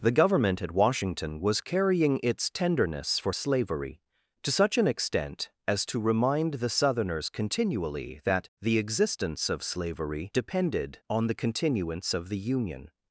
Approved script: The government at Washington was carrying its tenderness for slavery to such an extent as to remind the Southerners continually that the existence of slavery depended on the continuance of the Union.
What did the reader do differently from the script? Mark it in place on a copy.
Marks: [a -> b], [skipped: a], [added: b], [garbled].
The government at Washington was carrying its tenderness for slavery to such an extent as to remind the Southerners continually that the existence of slavery depended on the continuance of the Union.